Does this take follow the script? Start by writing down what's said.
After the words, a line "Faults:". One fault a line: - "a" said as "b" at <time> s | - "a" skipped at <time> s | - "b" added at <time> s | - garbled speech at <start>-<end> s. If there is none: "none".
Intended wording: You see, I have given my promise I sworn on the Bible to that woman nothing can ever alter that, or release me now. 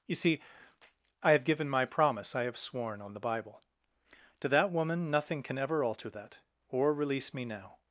You see, I have given my promise I have sworn on the Bible to that woman nothing can ever alter that, or release me now.
Faults:
- "have" added at 2.4 s